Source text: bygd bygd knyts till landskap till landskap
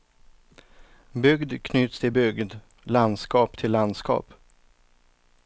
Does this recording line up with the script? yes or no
no